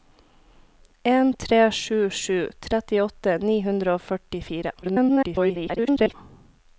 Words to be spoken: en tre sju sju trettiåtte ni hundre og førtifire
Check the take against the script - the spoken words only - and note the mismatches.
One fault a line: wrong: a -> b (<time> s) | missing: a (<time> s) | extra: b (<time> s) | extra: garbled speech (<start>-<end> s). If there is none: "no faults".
extra: garbled speech (4.8-6.1 s)